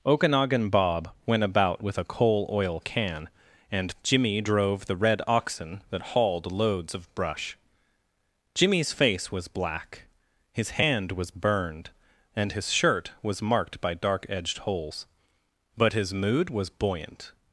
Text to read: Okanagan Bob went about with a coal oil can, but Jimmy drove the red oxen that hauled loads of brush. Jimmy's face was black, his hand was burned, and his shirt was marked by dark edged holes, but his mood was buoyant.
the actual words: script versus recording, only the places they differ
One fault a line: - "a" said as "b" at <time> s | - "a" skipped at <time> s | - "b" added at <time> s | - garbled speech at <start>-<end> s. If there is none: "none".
- "but" said as "and" at 3.7 s